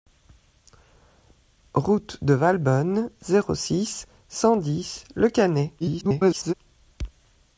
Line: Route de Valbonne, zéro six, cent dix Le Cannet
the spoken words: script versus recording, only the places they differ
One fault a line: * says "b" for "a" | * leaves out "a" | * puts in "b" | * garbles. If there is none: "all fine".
* garbles